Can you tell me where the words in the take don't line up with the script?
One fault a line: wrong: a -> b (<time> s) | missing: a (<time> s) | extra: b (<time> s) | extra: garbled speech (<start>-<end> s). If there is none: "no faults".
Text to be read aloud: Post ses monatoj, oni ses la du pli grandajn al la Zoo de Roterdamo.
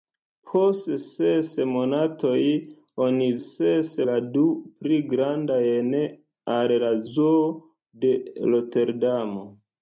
no faults